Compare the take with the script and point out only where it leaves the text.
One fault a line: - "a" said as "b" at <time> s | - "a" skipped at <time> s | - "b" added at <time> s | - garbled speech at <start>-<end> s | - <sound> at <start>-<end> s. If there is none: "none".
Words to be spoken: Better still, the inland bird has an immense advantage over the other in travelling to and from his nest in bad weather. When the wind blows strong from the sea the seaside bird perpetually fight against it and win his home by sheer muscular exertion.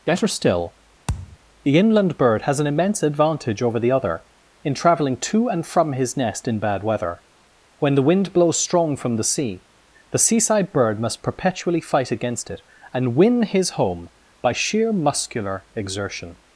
- thud at 1.1-1.4 s
- "must" added at 11.0 s